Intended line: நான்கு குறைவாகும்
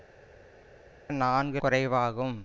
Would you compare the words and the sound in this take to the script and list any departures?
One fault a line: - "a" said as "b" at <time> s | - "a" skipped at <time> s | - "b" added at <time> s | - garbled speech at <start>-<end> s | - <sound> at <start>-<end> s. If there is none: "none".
none